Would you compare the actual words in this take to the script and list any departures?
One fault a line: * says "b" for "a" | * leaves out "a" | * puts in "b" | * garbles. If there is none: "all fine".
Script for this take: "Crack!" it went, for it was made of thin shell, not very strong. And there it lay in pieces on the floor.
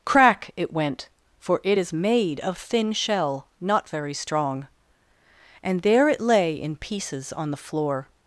* says "is" for "was"